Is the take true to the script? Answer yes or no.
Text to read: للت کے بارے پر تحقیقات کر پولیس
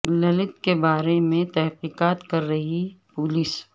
no